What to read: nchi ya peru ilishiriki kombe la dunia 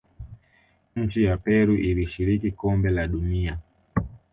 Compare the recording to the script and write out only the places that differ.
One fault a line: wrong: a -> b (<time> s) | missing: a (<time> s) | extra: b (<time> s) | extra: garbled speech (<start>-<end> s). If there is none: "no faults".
no faults